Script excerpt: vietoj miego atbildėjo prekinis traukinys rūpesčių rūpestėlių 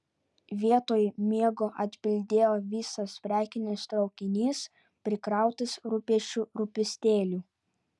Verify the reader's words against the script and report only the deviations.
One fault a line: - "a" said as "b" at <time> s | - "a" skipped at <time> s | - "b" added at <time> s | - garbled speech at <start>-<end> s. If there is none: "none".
- "visas" added at 2.7 s
- "prikrautas" added at 5.1 s